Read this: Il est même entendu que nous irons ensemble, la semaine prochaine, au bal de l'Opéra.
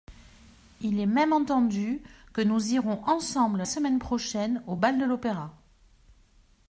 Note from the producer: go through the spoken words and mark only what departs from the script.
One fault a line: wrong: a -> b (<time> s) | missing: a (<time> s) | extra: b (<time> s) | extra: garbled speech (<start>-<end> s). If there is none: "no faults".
missing: la (3.6 s)